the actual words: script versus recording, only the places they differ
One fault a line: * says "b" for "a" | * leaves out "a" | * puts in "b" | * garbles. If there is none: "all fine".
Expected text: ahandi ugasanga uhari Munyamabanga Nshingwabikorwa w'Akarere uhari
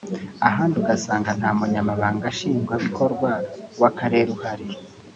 * says "nta" for "uhari"